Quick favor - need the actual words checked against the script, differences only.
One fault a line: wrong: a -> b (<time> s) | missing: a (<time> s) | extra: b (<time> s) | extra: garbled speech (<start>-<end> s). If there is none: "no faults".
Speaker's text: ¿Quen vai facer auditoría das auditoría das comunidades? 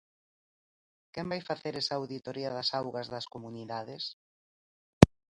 extra: esa (1.8 s)
wrong: auditoría -> augas (2.8 s)